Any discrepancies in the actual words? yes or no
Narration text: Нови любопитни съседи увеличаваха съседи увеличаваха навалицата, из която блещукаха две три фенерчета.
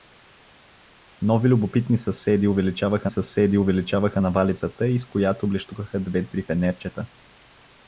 no